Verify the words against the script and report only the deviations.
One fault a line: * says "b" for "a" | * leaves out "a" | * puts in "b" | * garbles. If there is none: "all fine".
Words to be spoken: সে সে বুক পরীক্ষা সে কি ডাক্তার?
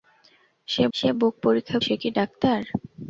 all fine